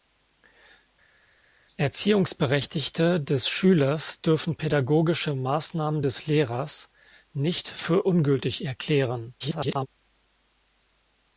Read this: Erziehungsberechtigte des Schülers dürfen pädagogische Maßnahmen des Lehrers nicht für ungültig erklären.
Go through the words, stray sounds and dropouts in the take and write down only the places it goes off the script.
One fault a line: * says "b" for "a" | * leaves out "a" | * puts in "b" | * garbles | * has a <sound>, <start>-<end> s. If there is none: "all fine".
* garbles